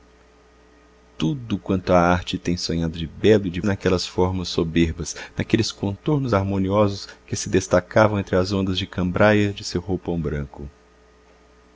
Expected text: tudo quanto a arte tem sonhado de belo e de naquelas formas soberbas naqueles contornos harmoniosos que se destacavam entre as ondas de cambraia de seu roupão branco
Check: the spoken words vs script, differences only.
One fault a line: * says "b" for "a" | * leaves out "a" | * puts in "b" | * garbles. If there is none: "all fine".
all fine